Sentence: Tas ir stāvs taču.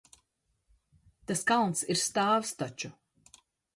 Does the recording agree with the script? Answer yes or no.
no